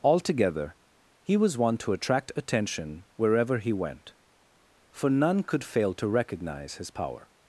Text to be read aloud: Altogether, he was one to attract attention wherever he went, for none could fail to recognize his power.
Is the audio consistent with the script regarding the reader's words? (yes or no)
yes